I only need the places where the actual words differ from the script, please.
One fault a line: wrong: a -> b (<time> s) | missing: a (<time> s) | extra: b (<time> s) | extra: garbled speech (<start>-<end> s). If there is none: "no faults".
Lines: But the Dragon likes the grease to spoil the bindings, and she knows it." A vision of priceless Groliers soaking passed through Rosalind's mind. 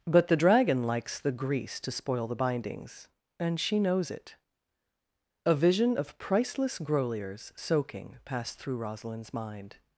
no faults